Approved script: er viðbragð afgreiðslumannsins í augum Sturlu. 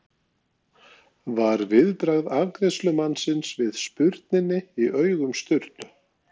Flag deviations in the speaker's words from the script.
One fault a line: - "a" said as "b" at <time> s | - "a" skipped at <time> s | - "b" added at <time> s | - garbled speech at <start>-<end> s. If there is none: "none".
- "er" said as "var" at 1.4 s
- "við spurninni" added at 3.6 s